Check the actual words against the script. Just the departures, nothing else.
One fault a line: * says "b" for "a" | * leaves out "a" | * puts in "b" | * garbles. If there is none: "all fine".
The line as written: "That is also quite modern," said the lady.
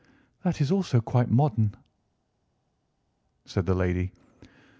all fine